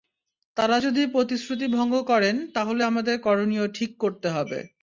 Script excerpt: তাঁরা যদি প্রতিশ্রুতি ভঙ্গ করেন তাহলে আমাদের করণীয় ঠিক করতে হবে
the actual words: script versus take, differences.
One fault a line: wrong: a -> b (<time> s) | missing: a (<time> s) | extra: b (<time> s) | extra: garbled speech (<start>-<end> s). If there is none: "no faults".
no faults